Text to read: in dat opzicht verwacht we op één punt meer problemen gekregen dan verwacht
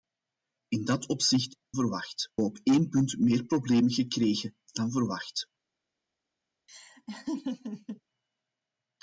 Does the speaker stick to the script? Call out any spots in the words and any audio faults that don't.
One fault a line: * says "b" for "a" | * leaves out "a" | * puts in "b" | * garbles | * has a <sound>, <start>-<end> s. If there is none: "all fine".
* has a laugh, 6.7-8.0 s